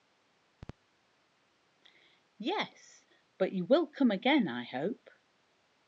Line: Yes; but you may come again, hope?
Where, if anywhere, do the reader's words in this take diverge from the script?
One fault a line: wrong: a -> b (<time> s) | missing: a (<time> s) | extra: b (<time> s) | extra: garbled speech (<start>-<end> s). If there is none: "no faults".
wrong: may -> will (3.6 s)
extra: I (4.5 s)